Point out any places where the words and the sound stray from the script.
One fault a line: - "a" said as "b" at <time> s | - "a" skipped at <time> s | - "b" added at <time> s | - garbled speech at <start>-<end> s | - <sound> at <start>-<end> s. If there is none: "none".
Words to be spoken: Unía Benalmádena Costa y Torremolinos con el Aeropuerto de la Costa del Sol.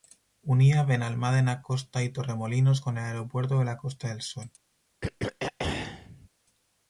- throat clearing at 5.0-6.3 s